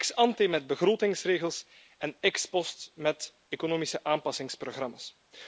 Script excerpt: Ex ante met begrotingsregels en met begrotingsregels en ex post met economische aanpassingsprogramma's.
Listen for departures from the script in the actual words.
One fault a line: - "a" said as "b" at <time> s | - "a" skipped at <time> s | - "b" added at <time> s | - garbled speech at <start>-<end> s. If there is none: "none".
- "met begrotingsregels en" skipped at 2.1 s